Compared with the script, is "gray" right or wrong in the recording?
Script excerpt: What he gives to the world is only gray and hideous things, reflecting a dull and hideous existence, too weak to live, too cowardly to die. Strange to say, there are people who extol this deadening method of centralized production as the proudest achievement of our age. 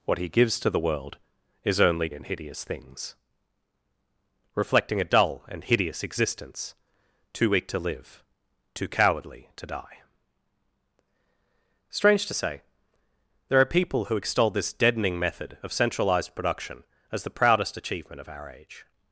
wrong